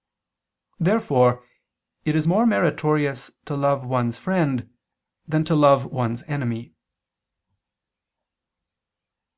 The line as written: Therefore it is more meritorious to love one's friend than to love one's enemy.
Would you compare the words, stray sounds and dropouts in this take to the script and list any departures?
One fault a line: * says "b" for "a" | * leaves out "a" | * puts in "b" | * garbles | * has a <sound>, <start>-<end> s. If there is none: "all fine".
all fine